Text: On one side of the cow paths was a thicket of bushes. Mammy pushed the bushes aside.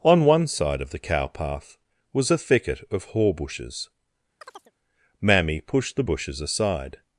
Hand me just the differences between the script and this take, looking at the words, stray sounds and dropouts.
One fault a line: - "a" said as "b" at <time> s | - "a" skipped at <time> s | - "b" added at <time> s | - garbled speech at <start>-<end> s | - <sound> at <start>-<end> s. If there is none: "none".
- "paths" said as "path" at 1.3 s
- "haw" added at 3.1 s
- chirp at 4.4-4.7 s